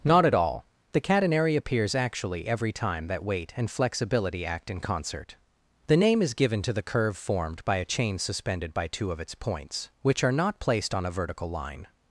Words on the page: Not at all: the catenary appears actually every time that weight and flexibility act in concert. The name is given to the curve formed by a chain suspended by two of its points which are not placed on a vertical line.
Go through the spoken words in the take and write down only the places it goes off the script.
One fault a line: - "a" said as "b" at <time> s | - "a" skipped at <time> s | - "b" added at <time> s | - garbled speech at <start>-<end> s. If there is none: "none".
none